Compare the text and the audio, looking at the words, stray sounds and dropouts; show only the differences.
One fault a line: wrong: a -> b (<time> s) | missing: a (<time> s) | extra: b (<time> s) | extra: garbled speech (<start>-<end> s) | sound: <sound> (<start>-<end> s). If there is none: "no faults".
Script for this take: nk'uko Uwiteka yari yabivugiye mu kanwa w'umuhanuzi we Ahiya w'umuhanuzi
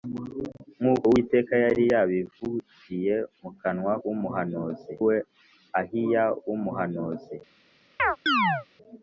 sound: chirp (8.0-8.7 s)